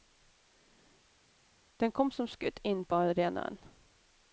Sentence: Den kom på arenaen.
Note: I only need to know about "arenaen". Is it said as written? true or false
true